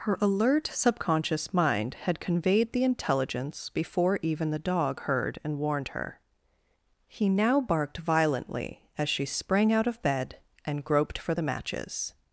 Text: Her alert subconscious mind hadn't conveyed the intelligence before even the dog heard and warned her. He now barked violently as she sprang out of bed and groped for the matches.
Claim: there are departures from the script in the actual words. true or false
true